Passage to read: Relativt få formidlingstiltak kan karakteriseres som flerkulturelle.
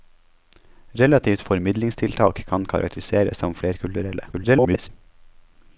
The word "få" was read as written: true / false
false